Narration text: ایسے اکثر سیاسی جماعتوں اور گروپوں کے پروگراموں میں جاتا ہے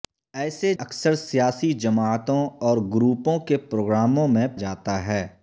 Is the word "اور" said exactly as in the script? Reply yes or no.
yes